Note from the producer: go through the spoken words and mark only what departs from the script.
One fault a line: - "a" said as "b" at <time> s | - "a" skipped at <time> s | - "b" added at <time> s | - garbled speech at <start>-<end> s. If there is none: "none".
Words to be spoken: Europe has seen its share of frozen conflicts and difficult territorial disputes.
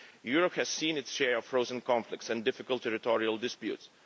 none